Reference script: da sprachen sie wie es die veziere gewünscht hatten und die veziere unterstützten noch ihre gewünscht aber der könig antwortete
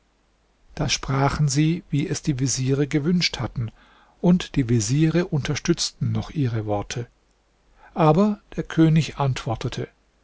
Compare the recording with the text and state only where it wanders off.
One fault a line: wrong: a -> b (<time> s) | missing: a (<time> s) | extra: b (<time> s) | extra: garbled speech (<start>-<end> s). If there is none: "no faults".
wrong: gewünscht -> worte (6.7 s)